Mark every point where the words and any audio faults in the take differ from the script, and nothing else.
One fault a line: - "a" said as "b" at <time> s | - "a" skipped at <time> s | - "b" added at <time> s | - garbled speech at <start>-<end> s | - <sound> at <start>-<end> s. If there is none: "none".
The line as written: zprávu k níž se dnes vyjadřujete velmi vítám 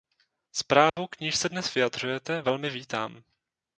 - dropout at 0.9-1.0 s